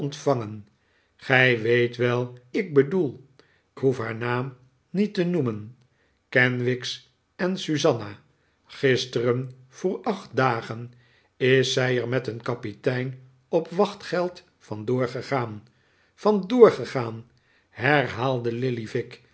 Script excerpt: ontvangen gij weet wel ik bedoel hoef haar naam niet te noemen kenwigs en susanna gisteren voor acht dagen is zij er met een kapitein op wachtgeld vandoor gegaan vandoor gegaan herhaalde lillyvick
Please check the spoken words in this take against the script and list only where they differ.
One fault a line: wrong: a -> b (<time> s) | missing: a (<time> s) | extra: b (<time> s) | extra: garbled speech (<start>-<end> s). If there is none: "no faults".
no faults